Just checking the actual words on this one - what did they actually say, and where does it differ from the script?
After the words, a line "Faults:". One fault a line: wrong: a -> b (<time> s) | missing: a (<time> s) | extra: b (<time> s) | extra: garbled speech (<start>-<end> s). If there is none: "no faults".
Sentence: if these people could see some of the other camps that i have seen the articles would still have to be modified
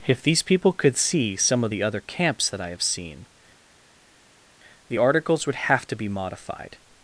if these people could see some of the other camps that i have seen the articles would have to be modified
Faults:
missing: still (5.5 s)